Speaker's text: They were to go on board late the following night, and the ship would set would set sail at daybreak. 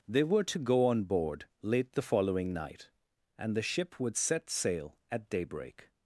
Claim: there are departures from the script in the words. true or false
true